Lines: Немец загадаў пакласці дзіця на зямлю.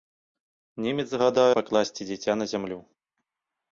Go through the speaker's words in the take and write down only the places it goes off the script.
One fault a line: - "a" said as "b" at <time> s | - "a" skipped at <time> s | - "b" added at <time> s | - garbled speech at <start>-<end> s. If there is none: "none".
none